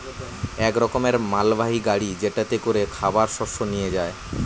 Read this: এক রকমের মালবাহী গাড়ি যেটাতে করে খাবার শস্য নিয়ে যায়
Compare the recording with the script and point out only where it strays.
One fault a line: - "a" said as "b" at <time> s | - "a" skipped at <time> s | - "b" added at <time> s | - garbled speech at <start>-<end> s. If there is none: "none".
none